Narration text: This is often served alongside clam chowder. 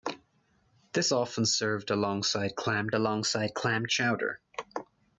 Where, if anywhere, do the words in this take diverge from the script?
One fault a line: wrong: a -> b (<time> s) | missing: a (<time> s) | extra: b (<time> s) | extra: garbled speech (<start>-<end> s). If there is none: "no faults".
missing: is (1.1 s)
extra: alongside clam (2.9 s)